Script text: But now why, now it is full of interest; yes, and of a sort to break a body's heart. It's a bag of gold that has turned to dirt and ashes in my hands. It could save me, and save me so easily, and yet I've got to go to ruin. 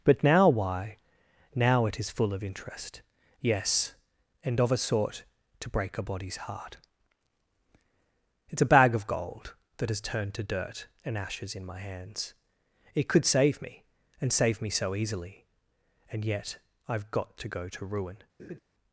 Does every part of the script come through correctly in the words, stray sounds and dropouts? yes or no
no